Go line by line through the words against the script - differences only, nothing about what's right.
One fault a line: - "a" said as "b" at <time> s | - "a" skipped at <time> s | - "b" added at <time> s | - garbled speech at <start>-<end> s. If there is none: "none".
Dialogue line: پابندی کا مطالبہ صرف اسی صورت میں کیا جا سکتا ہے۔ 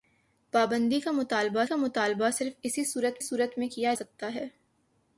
- "کا مطالبہ" added at 1.6 s
- "صورت" added at 3.2 s
- "جا" skipped at 3.9 s